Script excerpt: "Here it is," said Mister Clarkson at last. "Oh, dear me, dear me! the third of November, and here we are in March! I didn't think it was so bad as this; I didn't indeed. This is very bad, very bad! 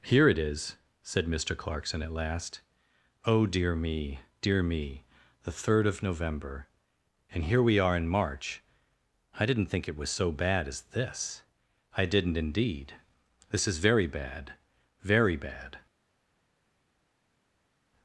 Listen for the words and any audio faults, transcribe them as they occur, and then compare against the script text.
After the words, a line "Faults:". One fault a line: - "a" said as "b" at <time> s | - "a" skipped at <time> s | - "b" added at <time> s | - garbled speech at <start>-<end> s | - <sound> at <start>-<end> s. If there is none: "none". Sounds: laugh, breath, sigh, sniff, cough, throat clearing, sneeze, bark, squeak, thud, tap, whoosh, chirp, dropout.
"Here it is," said Mister Clarkson at last. "Oh, dear me, dear me! the third of November, and here we are in March! I didn't think it was so bad as this; I didn't indeed. This is very bad, very bad!
Faults:
none